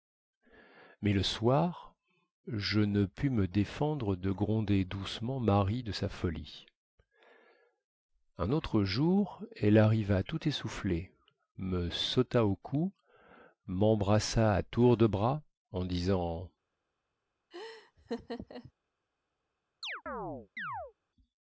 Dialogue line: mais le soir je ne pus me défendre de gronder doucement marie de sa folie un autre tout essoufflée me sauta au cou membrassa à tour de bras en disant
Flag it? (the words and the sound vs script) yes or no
yes